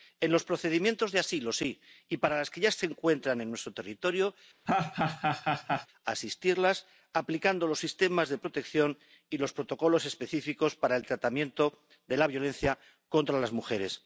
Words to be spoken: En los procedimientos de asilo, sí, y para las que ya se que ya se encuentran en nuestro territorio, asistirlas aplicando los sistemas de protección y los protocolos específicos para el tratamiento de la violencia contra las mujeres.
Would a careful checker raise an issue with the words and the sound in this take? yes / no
yes